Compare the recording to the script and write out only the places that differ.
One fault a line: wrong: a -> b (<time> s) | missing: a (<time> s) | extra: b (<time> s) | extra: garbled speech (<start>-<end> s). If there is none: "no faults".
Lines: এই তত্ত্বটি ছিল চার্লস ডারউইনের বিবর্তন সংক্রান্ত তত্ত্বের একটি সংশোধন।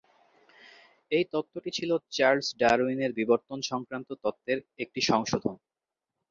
no faults